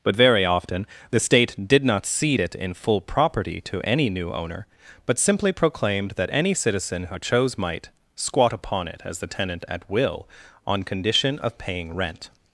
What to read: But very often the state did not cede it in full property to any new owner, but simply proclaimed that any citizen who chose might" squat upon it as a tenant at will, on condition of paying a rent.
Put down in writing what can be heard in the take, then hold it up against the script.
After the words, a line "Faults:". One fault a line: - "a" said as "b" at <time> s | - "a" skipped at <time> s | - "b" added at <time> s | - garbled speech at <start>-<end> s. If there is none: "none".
But very often the state did not cede it in full property to any new owner, but simply proclaimed that any citizen who chose might" squat upon it as the tenant at will, on condition of paying rent.
Faults:
- "a" said as "the" at 9.2 s
- "a" skipped at 12.0 s